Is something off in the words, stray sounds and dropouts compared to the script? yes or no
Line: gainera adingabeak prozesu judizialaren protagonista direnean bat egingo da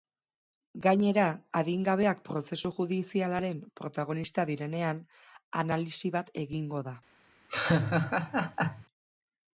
yes